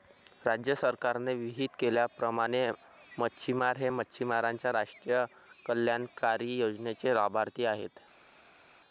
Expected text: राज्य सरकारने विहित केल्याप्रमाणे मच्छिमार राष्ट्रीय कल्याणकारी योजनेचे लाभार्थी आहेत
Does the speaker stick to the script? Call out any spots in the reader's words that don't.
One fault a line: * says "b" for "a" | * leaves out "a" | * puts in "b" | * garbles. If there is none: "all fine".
* puts in "हे मच्छिमारांच्या"